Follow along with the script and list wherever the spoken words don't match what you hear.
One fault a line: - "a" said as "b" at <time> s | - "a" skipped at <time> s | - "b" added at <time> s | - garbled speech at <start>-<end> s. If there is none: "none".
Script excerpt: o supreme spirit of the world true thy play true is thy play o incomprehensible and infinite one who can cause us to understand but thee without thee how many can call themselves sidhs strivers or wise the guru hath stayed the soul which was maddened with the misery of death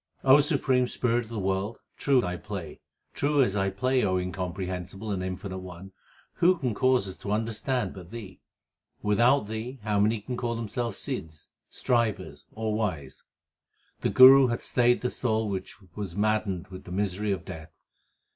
none